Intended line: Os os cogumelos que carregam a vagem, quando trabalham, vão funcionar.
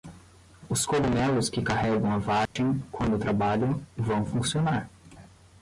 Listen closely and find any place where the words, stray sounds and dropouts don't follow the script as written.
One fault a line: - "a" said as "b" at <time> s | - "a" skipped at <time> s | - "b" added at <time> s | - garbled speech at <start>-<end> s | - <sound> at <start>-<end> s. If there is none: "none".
- "os" skipped at 0.8 s
- dropout at 2.5-2.6 s